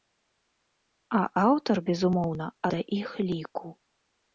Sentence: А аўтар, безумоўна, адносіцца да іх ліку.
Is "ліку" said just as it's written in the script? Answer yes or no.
yes